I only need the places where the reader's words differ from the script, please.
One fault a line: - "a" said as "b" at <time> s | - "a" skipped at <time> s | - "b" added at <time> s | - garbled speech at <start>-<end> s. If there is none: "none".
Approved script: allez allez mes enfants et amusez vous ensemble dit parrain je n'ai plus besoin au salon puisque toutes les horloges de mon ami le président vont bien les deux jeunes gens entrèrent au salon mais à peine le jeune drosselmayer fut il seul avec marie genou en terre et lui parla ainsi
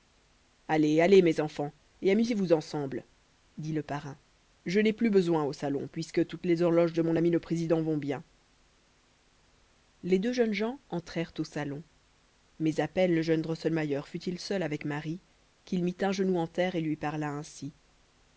- "le" added at 3.7 s
- "qu'il mit un" added at 15.6 s